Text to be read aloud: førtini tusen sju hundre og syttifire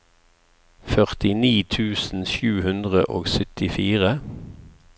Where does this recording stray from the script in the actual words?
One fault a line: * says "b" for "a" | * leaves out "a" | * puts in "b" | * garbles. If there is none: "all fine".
all fine